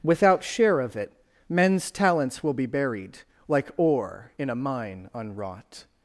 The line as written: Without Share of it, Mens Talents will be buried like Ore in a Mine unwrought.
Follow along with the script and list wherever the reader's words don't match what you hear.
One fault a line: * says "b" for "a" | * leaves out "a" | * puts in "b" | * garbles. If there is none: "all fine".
all fine